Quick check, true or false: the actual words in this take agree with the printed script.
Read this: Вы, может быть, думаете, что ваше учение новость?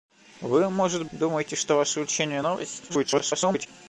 false